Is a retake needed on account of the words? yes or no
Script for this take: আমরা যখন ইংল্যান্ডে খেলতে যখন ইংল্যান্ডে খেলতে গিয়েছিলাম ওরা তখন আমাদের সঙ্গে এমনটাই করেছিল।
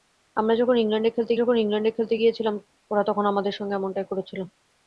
no